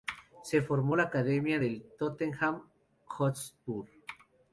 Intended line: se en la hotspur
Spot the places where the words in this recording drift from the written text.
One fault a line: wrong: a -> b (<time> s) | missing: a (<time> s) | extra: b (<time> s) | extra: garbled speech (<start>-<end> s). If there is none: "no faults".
extra: formó (0.6 s)
extra: academia del tottenham (1.0 s)